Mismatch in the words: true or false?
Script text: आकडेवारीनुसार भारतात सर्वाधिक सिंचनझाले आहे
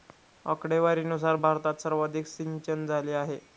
false